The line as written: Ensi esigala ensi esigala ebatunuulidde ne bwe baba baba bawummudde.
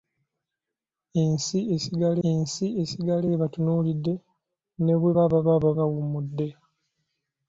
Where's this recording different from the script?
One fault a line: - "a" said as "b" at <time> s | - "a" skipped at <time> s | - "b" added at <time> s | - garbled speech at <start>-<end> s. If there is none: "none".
none